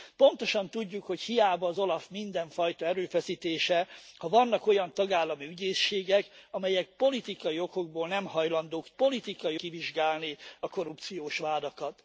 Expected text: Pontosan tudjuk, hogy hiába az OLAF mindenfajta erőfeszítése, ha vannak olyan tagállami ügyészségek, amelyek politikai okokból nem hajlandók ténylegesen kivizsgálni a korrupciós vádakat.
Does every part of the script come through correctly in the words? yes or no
no